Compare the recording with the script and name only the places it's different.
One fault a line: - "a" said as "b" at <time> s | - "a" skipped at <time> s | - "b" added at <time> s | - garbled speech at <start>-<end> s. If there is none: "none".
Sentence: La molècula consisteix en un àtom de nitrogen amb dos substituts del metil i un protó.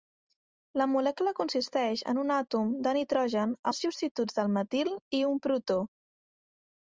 - "amb" skipped at 3.5 s